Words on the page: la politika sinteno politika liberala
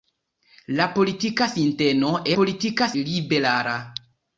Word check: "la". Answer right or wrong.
right